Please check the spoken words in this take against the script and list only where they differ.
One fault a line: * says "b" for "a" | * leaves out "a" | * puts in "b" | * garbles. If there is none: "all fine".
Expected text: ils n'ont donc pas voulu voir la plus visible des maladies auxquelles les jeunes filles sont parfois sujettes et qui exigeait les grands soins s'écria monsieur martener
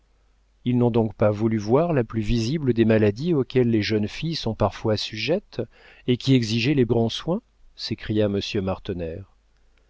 all fine